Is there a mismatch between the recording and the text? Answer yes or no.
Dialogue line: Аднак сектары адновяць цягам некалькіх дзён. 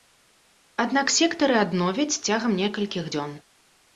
no